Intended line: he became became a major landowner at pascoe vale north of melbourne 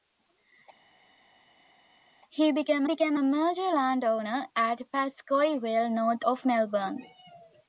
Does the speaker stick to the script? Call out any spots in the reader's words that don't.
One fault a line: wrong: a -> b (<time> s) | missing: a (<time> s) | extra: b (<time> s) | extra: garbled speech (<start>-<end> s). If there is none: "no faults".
no faults